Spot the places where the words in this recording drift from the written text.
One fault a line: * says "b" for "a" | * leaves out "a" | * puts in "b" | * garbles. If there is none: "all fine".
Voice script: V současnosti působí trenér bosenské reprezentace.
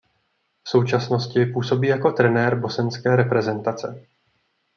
* puts in "jako"